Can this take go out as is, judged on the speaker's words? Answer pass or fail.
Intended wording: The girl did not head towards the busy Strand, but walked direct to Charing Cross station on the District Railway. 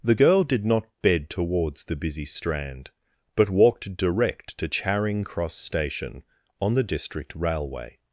fail